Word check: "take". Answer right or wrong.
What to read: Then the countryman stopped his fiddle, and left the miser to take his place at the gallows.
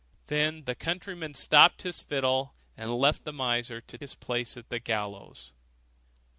wrong